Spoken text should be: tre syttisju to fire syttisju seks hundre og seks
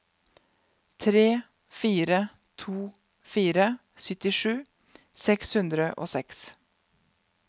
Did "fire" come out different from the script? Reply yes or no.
no